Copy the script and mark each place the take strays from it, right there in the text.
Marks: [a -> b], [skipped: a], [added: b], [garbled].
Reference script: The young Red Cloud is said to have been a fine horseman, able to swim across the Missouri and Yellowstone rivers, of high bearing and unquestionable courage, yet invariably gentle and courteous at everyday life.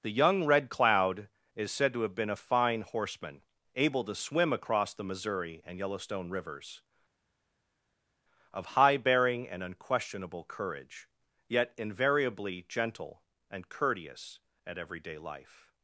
The young Red Cloud is said to have been a fine horseman, able to swim across the Missouri and Yellowstone rivers, of high bearing and unquestionable courage, yet invariably gentle and courteous at everyday life.